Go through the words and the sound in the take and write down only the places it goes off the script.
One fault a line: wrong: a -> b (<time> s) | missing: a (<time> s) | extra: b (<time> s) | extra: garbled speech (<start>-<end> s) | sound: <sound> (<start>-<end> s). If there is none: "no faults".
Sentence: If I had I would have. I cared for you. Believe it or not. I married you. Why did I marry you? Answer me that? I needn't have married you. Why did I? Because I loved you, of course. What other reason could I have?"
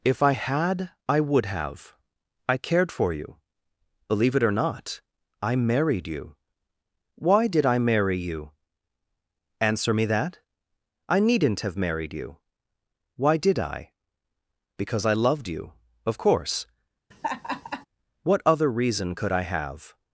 sound: laugh (17.1-17.9 s)